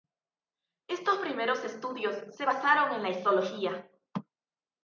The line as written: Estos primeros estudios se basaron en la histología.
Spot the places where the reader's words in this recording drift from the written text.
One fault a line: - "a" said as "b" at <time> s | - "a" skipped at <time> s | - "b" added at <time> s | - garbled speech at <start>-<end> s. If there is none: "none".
none